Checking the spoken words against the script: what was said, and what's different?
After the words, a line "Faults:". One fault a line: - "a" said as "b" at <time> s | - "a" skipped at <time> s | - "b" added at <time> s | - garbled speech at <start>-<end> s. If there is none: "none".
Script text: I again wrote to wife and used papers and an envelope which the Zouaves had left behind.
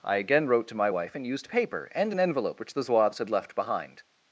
I again wrote to my wife and used paper and an envelope which the Zouaves had left behind.
Faults:
- "my" added at 0.8 s
- "papers" said as "paper" at 1.5 s